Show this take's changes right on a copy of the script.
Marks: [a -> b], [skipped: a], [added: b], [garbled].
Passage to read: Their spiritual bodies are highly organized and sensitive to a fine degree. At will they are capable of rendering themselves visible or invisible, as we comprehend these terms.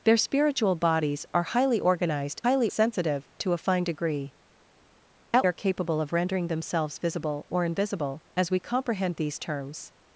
Their spiritual bodies are highly organized [and -> highly] sensitive to a fine degree. At [skipped: will they] are capable of rendering themselves visible or invisible, as we comprehend these terms.